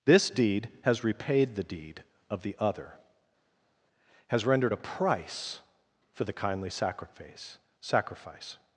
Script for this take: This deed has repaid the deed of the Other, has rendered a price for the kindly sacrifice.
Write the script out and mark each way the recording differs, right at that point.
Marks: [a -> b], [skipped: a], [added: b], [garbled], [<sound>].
This deed has repaid the deed of the Other, has rendered a price for the kindly sacrifice. [added: sacrifice]